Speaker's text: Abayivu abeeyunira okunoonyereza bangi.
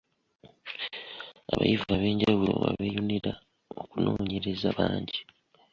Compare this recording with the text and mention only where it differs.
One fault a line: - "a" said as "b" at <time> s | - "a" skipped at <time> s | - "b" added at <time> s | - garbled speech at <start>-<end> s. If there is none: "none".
- "ab'enjawulo" added at 1.9 s